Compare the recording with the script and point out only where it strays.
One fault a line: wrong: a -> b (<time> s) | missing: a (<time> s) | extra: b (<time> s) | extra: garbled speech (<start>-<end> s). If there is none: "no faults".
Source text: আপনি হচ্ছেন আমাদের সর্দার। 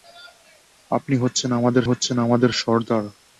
extra: হচ্ছেন আমাদের (1.8 s)